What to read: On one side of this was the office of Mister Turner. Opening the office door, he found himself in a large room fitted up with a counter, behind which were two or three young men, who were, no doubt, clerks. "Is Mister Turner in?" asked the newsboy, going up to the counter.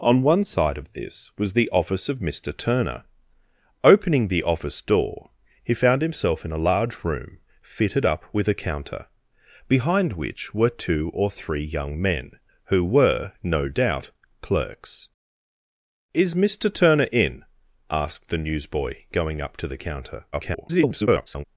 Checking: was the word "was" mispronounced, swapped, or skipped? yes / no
no